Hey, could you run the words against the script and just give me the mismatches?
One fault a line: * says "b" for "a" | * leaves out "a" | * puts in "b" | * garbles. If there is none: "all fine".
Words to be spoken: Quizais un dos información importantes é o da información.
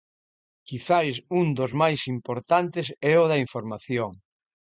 * says "máis" for "información"